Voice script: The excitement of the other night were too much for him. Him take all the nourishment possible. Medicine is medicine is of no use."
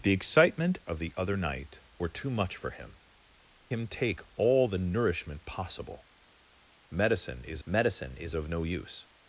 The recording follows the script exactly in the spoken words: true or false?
true